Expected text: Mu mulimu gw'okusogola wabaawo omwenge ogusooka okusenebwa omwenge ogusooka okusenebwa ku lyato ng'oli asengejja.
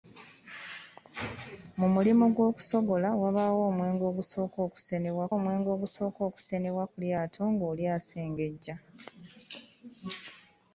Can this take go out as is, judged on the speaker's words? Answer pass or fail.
pass